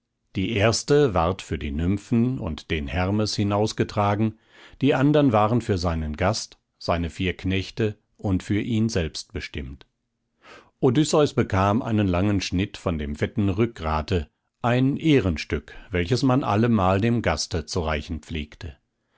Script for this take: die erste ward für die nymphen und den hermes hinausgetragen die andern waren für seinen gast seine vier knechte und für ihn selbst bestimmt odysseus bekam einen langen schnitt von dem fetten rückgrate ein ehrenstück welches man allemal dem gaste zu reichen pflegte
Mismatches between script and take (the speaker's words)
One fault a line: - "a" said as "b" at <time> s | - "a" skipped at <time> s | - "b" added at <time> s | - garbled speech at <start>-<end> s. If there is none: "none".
none